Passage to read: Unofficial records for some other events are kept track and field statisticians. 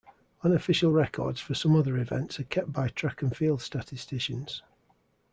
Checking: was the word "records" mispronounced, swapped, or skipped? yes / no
no